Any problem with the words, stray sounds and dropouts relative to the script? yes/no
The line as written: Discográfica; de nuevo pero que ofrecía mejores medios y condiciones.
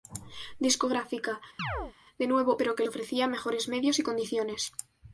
yes